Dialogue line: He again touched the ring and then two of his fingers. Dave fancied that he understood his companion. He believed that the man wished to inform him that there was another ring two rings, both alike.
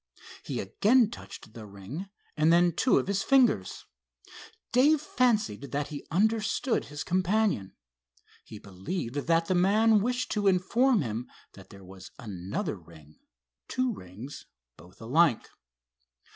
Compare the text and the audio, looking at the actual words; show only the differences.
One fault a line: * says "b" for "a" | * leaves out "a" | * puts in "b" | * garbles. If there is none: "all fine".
all fine